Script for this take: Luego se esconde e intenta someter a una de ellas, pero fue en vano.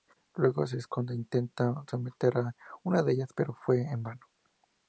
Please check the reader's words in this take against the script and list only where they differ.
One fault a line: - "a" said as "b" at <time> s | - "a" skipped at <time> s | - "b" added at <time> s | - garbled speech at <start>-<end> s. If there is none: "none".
none